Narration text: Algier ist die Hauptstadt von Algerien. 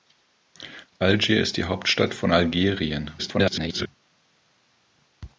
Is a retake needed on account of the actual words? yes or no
yes